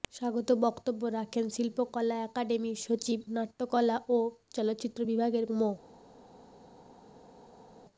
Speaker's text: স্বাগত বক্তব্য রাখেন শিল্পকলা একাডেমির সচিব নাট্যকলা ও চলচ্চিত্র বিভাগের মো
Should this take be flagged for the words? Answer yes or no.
no